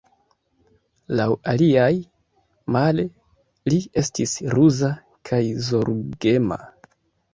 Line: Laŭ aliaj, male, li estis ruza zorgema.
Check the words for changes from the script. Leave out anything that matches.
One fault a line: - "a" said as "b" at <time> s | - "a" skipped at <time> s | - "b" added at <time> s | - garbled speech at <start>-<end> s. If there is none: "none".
- "kaj" added at 5.3 s